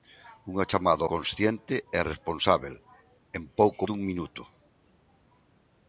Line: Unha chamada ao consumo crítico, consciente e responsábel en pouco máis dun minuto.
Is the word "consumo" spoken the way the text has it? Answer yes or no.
no